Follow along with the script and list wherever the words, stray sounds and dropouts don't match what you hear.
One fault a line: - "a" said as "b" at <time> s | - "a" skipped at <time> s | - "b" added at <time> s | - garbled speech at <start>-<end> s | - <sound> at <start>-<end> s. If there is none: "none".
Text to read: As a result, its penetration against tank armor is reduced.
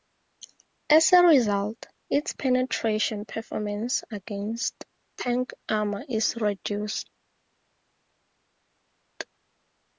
- "performance" added at 3.3 s